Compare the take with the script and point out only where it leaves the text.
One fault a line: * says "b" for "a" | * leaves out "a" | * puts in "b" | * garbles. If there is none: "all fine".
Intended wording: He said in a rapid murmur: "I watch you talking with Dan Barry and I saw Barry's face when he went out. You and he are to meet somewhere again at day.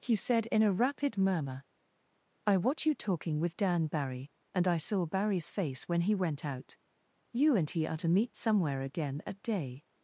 all fine